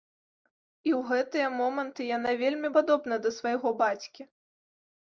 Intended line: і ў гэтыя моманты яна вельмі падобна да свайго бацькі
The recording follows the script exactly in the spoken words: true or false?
true